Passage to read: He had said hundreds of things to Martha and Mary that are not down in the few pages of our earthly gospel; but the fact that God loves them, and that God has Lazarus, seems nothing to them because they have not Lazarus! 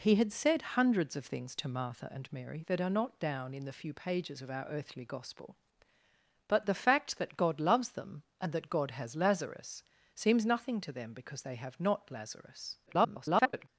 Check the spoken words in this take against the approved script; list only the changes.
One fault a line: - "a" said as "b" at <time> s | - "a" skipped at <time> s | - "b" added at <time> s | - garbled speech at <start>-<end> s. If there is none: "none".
- garbled speech at 12.9-13.7 s